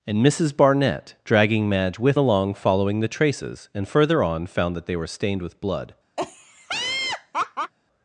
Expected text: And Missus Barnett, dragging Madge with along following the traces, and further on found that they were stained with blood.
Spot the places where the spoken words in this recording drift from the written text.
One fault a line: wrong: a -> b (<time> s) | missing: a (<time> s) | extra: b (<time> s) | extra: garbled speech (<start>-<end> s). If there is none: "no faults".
no faults